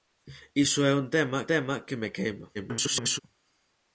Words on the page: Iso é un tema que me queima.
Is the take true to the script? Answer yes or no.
no